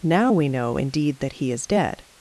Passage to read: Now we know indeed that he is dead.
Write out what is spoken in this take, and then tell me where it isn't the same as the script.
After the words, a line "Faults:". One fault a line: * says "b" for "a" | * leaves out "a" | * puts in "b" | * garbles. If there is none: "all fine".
Now we know indeed that he is dead.
Faults:
all fine